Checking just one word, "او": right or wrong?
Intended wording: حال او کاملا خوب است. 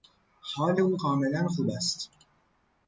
right